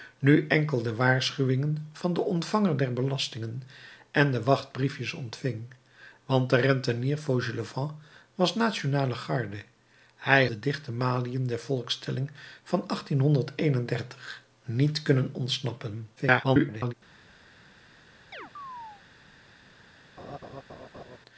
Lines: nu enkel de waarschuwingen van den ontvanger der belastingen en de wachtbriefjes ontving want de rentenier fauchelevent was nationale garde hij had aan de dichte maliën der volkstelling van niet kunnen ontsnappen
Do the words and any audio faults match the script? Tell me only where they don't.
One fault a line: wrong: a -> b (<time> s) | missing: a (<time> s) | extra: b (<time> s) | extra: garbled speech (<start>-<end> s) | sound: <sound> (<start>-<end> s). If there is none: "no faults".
missing: had aan (10.5 s)
extra: garbled speech (16.2-16.9 s)
sound: chirp (18.3-19.0 s)
sound: laugh (20.2-21.2 s)